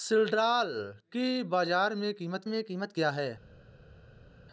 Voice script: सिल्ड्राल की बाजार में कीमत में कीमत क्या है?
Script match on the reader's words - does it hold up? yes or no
yes